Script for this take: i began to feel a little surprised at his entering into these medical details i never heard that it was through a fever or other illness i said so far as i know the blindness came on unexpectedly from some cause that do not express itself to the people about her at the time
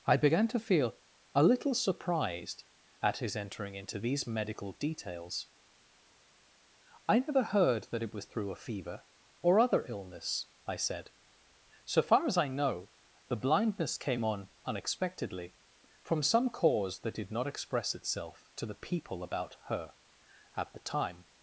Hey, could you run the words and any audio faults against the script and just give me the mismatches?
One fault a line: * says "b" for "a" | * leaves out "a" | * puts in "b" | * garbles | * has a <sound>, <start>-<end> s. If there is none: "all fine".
* says "did" for "do"